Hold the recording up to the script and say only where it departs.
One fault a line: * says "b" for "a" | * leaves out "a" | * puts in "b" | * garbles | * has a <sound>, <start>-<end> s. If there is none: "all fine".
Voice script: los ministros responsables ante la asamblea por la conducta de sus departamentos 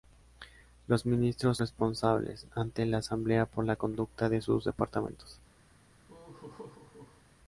* has a laugh, 6.1-7.2 s